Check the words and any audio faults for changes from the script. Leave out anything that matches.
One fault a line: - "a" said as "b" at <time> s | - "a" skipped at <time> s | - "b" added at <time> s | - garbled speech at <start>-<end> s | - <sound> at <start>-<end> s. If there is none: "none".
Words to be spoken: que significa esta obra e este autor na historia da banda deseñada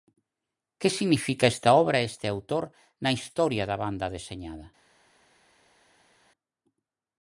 none